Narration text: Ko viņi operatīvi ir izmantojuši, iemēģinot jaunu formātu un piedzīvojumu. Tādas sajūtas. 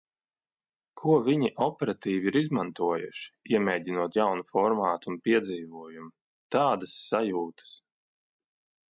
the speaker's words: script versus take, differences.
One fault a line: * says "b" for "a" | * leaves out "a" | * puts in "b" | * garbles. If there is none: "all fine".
all fine